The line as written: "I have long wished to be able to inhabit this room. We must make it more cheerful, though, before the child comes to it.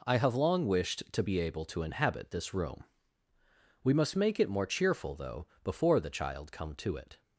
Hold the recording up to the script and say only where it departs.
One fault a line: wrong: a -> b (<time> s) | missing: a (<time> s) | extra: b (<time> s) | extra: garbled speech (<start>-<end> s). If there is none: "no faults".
wrong: comes -> come (6.5 s)